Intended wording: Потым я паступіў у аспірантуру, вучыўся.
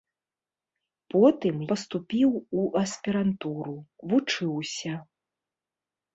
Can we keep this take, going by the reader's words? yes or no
no